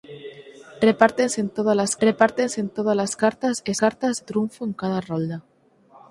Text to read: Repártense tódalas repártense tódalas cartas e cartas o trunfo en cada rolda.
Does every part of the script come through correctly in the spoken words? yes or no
yes